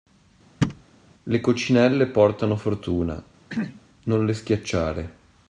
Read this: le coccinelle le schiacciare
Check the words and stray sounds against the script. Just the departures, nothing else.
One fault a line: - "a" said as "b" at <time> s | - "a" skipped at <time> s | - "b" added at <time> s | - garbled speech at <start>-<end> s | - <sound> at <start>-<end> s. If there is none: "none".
- thud at 0.6-0.8 s
- "portano fortuna non" added at 2.1 s
- throat clearing at 3.5-3.8 s